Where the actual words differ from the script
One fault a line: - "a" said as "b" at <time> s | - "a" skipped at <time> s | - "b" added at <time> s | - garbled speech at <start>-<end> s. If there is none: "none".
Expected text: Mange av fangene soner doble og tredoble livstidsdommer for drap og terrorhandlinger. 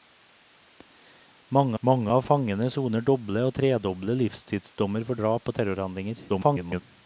- "mange" added at 1.8 s
- garbled speech at 6.3-6.8 s